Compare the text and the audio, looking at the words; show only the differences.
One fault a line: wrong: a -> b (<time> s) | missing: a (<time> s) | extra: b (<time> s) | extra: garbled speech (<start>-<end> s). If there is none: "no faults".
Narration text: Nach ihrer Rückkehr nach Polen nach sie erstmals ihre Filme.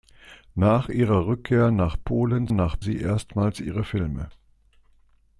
no faults